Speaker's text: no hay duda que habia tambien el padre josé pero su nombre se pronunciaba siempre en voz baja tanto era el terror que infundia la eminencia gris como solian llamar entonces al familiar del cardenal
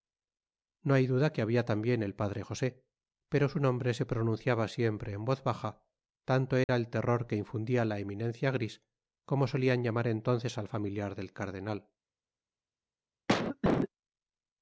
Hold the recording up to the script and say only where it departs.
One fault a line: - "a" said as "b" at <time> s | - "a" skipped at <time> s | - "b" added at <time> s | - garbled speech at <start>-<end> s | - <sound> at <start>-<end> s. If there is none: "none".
- dropout at 6.6-6.7 s
- cough at 13.3-13.9 s